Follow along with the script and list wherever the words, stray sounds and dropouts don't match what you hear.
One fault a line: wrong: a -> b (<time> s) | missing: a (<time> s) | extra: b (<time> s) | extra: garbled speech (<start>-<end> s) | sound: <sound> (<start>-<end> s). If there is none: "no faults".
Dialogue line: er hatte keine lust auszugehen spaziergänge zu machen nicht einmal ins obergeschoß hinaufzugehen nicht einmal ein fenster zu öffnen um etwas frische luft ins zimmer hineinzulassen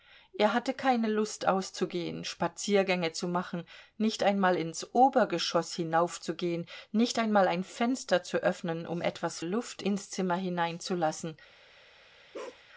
missing: frische (9.4 s)
sound: bark (12.3-12.6 s)